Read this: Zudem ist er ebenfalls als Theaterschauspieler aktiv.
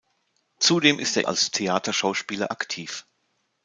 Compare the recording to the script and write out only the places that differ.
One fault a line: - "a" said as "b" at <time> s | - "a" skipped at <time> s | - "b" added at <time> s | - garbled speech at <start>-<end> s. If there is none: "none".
- "ebenfalls" skipped at 1.3 s